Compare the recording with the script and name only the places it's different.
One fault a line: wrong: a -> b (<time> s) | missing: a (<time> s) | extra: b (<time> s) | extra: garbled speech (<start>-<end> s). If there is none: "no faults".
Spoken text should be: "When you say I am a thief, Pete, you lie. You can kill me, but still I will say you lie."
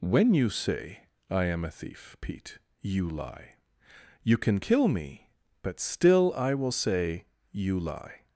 no faults